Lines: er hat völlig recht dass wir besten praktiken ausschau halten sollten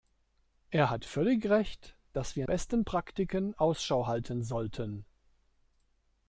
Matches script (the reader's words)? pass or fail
pass